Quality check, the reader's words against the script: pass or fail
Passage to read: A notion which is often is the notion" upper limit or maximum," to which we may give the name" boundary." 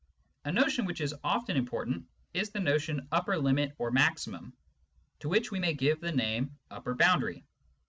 fail